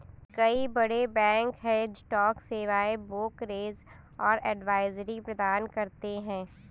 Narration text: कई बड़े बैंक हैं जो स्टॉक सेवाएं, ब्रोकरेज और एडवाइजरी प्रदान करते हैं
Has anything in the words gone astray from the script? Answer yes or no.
yes